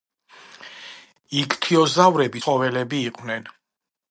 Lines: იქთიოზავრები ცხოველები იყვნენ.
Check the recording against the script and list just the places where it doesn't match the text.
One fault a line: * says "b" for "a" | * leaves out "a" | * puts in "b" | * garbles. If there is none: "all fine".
all fine